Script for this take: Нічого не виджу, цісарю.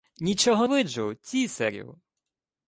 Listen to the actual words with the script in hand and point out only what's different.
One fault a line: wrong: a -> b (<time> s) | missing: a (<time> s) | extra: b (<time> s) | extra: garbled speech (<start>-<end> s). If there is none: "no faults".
missing: не (0.7 s)